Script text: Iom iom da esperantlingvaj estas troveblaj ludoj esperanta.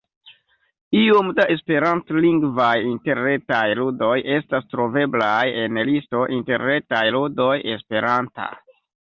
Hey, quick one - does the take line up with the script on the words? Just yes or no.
no